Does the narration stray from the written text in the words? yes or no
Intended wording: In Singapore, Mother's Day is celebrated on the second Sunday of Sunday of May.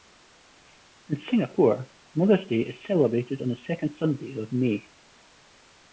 yes